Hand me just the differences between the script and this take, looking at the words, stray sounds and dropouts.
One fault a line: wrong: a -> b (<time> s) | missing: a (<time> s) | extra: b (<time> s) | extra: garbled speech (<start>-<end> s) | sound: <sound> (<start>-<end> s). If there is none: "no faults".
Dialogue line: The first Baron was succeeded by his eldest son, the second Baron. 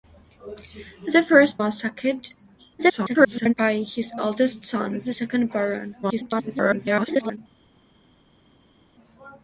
missing: Baron (1.6 s)
extra: garbled speech (2.8-3.5 s)
extra: garbled speech (6.0-7.4 s)